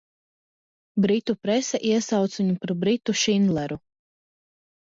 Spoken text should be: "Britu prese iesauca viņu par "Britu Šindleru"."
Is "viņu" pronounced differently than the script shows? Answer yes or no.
no